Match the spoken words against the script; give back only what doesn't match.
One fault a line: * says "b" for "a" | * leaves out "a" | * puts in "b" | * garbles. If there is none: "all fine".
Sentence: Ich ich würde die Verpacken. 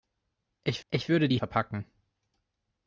all fine